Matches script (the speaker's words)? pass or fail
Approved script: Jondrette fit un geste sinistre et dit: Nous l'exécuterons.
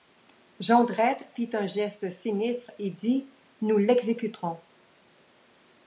pass